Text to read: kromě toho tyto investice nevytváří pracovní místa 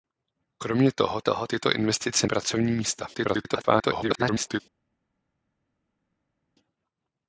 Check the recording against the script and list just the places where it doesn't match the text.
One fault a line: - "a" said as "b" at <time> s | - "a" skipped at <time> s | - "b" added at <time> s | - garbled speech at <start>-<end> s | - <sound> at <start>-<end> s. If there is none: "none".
- "toho" added at 1.2 s
- "nevytváří" skipped at 2.3 s
- garbled speech at 3.1-4.6 s